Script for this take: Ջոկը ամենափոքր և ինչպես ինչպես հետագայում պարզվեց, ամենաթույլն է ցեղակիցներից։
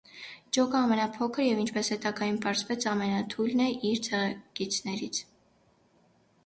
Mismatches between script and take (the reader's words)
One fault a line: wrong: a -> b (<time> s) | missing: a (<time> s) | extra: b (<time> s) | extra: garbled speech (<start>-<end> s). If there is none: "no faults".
missing: ինչպես (1.9 s)
extra: իր (3.9 s)